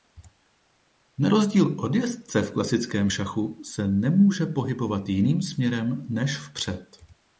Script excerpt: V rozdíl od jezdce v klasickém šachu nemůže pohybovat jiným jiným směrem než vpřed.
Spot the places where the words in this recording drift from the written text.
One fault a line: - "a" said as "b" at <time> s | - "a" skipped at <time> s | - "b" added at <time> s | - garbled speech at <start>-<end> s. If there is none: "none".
- "V" said as "Na" at 1.2 s
- "se" added at 3.6 s
- "jiným" skipped at 5.4 s